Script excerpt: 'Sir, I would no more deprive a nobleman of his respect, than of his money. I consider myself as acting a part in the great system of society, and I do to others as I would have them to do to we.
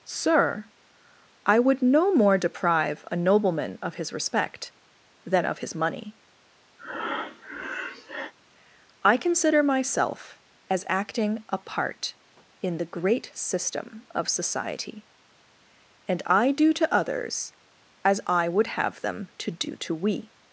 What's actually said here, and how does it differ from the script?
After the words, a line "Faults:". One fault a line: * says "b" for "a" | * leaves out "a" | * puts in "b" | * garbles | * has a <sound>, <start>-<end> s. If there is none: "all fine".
'Sir, I would no more deprive a nobleman of his respect, than of his money. I consider myself as acting a part in the great system of society, and I do to others as I would have them to do to we.
Faults:
* has a breath, 6.8-8.3 s